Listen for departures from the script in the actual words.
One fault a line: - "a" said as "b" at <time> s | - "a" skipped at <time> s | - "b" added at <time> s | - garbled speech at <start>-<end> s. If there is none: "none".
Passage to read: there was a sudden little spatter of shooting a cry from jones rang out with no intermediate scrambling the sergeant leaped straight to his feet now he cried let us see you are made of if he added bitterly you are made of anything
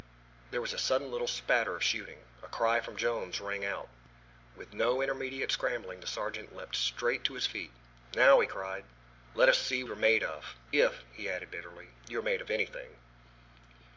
none